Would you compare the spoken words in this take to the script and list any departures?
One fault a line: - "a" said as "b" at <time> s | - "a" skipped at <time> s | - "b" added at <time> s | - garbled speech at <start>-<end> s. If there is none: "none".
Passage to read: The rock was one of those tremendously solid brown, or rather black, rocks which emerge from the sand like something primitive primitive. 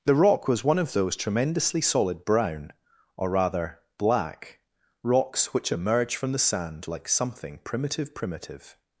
none